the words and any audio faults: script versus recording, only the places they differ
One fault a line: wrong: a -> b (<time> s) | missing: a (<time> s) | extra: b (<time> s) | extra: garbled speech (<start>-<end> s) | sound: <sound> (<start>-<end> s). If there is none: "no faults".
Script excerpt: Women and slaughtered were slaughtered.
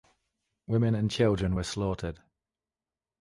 wrong: slaughtered -> children (1.1 s)